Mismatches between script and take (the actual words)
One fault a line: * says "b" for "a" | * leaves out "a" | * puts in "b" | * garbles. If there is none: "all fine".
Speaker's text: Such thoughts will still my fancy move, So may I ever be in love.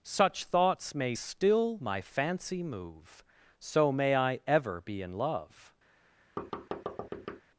* says "may" for "will"